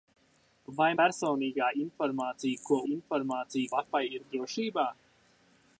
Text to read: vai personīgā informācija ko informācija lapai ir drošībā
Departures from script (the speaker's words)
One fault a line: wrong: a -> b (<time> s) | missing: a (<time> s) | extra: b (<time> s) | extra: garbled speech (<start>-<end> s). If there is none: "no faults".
no faults